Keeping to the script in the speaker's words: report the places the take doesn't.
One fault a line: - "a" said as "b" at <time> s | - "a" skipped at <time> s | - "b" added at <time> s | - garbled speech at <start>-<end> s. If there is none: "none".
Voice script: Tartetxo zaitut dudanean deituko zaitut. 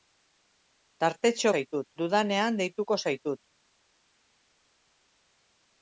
none